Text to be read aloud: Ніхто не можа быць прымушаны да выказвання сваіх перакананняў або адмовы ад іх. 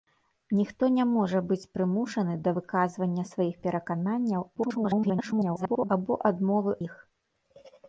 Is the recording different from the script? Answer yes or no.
yes